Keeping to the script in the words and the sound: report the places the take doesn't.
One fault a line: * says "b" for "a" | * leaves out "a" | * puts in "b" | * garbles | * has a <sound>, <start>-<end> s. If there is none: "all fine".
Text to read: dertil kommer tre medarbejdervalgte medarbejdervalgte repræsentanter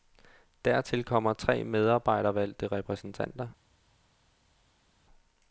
* leaves out "medarbejdervalgte"